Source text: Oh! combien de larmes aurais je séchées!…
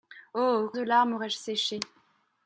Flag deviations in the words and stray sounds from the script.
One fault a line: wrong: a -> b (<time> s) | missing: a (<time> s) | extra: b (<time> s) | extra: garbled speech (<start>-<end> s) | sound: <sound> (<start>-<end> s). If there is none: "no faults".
missing: combien (0.7 s)